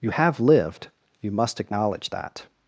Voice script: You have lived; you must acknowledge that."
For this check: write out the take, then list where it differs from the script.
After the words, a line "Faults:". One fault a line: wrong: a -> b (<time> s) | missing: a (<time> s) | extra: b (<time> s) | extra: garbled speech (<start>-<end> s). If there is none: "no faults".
You have lived; you must acknowledge that."
Faults:
no faults